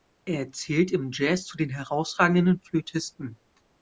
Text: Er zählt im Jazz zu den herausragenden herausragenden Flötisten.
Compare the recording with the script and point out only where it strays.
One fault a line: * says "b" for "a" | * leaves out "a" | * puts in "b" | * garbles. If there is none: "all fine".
* leaves out "herausragenden"